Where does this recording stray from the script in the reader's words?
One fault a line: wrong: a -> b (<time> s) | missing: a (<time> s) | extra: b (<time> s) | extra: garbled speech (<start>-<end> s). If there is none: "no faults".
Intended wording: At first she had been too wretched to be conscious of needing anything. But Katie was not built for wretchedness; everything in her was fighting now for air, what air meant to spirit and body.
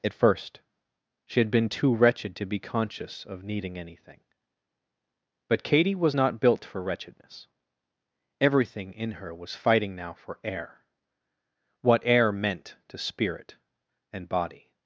no faults